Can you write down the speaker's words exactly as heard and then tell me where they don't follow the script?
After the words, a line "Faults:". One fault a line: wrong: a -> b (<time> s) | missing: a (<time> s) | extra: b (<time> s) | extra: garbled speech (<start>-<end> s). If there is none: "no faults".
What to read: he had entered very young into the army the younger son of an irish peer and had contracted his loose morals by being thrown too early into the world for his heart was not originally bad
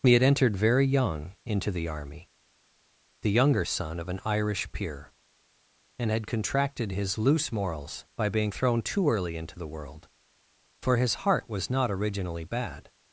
he had entered very young into the army the younger son of an irish peer and had contracted his loose morals by being thrown too early into the world for his heart was not originally bad
Faults:
no faults